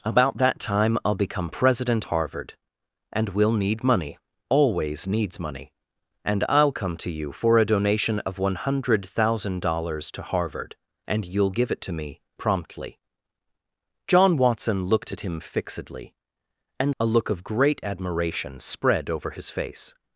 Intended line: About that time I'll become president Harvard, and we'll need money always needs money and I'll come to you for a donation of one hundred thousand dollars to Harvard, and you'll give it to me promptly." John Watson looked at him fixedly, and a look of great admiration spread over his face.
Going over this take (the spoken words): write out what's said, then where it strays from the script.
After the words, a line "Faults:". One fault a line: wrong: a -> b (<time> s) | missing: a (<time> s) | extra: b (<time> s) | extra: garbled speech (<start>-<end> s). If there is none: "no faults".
About that time I'll become president Harvard, and we'll need money always needs money and I'll come to you for a donation of one hundred thousand dollars to Harvard, and you'll give it to me promptly." John Watson looked at him fixedly, and a look of great admiration spread over his face.
Faults:
no faults